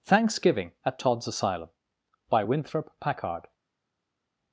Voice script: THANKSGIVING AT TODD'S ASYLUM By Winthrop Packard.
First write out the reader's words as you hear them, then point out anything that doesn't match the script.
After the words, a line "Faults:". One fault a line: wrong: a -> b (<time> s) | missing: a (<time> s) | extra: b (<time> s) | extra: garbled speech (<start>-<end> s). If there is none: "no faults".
THANKSGIVING AT TODD'S ASYLUM By Winthrop Packard.
Faults:
no faults